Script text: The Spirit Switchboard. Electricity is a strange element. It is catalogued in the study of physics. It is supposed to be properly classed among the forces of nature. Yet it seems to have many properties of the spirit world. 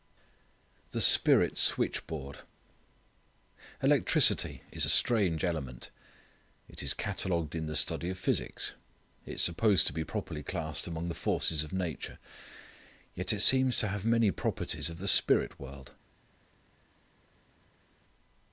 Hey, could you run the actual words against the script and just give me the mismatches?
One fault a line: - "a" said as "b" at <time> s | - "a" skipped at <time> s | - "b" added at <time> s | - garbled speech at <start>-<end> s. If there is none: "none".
none